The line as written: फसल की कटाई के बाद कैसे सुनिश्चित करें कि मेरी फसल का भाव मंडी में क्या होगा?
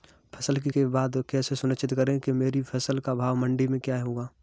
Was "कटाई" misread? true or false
true